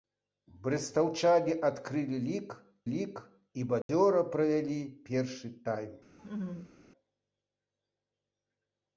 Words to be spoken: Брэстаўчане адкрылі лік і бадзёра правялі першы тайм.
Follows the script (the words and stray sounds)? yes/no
no